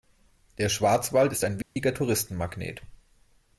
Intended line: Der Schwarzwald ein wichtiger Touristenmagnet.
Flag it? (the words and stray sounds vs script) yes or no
yes